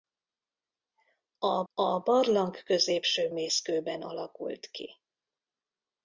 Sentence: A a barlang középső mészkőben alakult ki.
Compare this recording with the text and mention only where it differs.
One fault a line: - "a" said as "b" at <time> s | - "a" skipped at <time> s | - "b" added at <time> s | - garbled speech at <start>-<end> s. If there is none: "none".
none